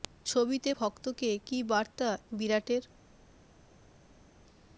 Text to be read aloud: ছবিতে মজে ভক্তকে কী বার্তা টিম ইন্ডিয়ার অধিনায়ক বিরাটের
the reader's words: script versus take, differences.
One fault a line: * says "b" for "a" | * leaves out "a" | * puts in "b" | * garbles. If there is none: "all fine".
* leaves out "মজে"
* leaves out "টিম ইন্ডিয়ার অধিনায়ক"